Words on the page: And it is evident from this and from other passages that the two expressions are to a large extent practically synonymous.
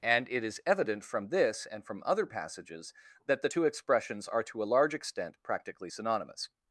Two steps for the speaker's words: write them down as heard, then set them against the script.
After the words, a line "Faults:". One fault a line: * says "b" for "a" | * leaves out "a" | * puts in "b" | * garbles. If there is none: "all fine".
And it is evident from this and from other passages that the two expressions are to a large extent practically synonymous.
Faults:
all fine